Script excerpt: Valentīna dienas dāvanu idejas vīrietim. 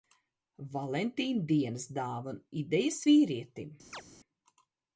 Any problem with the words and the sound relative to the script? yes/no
yes